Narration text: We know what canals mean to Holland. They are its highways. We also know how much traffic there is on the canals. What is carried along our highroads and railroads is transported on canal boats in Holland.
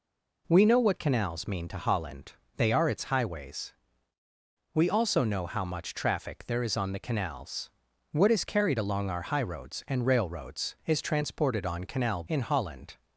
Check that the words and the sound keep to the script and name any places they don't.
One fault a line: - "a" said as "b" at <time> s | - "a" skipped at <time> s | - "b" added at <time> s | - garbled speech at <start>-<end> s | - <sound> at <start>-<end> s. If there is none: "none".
- "boats" skipped at 12.2 s